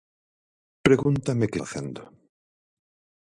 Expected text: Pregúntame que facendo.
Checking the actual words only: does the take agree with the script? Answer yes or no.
yes